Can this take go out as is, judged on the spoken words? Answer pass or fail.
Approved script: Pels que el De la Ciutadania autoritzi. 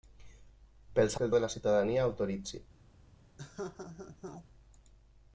pass